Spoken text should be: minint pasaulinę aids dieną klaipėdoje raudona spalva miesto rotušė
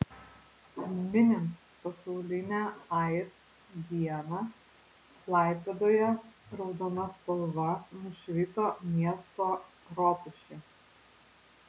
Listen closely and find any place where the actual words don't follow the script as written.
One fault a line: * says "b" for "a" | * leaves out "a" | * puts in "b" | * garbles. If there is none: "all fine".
* puts in "nušvito"